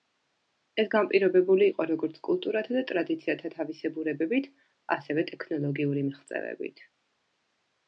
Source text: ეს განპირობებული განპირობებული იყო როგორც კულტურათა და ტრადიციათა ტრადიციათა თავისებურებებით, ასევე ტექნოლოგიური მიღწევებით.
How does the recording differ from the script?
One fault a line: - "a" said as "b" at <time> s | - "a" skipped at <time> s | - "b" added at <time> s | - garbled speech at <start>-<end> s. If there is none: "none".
- "განპირობებული" skipped at 1.7 s
- "ტრადიციათა" skipped at 3.5 s